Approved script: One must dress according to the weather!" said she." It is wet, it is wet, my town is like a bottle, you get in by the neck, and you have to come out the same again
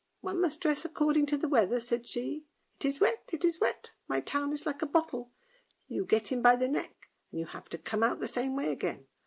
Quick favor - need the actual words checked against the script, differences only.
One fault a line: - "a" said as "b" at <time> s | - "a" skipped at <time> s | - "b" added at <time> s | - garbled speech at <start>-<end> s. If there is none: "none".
- "way" added at 8.6 s